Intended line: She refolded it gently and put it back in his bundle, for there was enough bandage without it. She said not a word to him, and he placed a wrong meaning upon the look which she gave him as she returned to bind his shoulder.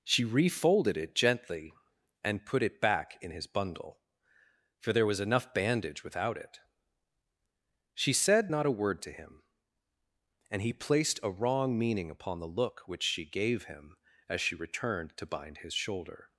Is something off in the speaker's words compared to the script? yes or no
no